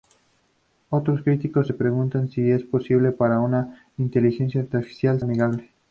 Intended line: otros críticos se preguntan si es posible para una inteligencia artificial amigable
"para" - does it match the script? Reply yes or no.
yes